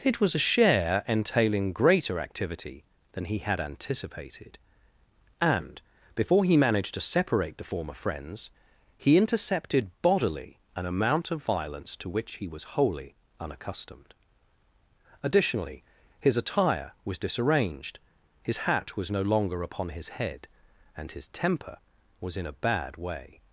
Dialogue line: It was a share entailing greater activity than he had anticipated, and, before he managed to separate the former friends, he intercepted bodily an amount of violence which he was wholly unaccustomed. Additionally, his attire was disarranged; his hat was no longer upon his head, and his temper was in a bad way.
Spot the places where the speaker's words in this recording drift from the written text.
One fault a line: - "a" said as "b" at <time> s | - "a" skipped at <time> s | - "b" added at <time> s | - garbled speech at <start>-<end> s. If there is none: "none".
- "to" added at 12.0 s